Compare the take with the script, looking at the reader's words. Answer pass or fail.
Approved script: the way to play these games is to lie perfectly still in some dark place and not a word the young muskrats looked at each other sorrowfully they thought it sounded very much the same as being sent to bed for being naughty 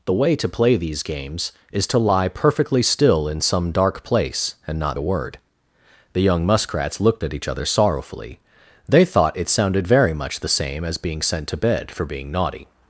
pass